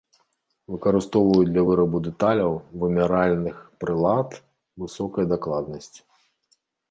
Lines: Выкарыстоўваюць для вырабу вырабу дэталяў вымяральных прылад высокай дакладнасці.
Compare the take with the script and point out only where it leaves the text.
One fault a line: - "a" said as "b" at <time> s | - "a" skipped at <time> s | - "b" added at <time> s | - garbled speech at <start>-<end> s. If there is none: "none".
- "вырабу" skipped at 2.0 s